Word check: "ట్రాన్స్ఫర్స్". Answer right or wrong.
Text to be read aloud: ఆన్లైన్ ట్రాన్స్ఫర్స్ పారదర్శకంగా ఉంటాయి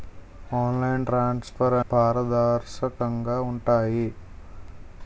right